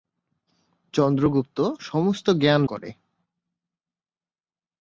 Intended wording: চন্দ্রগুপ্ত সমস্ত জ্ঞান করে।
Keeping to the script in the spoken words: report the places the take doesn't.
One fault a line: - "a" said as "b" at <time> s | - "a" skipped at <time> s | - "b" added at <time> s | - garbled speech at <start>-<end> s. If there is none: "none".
none